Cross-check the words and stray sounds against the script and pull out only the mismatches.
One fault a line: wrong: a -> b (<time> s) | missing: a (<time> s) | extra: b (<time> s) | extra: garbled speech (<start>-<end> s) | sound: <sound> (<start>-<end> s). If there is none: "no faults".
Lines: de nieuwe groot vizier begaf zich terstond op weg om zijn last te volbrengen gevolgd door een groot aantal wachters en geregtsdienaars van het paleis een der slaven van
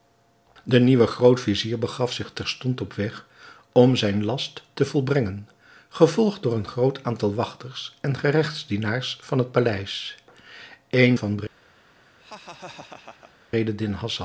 missing: der slaven (11.2 s)
sound: laugh (12.2-13.3 s)